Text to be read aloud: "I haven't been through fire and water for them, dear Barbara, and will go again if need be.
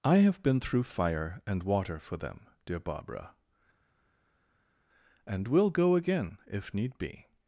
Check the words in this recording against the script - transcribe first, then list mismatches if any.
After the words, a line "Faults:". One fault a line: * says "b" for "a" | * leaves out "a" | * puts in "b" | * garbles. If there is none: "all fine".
"I have been through fire and water for them, dear Barbara, and will go again if need be.
Faults:
* says "have" for "haven't"